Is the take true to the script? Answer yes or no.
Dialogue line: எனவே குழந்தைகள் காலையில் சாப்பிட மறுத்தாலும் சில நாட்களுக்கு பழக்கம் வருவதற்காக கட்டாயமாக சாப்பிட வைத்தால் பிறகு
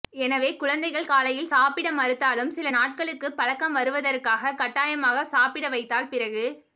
yes